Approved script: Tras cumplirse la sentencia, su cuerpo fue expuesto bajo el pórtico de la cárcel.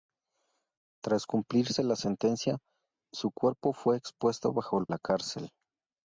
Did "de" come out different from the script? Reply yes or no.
yes